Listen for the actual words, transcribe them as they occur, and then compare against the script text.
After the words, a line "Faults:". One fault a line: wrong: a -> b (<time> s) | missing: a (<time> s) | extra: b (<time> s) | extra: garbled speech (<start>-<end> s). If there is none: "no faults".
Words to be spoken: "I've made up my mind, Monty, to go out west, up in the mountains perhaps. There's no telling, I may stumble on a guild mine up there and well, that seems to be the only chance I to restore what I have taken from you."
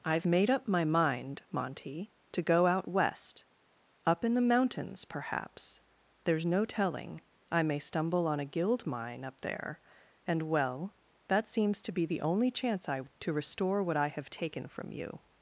"I've made up my mind, Monty, to go out west, up in the mountains perhaps. There's no telling, I may stumble on a guild mine up there and well, that seems to be the only chance I to restore what I have taken from you."
Faults:
no faults